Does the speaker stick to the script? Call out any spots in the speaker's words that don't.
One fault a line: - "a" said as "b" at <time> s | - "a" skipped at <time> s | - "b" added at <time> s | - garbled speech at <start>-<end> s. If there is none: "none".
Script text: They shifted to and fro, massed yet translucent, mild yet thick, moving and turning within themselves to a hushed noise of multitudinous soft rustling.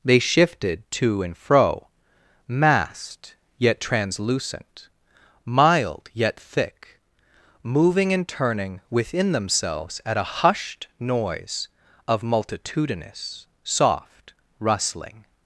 - "to" said as "at" at 10.1 s